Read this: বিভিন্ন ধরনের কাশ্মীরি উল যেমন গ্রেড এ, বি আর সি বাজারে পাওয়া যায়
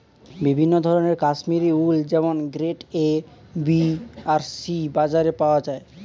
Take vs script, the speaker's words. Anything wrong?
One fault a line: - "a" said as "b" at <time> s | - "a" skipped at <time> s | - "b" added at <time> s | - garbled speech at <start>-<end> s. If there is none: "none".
none